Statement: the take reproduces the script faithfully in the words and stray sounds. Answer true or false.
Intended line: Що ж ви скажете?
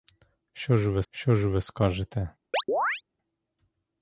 false